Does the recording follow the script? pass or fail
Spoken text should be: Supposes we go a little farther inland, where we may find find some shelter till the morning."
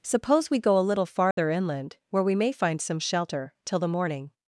fail